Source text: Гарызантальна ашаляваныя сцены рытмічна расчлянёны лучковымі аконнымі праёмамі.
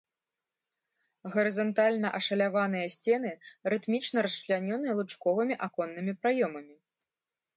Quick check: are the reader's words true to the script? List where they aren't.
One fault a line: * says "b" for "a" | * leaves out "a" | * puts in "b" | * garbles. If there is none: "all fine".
all fine